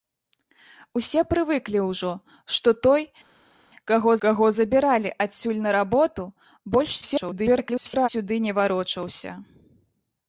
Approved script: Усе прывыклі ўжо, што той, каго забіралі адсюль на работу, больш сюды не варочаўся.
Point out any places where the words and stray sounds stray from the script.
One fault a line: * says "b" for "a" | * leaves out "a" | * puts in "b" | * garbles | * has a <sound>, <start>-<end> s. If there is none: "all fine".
* puts in "каго"
* garbles